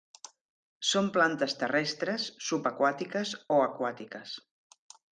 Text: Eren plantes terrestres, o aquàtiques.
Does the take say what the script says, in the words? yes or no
no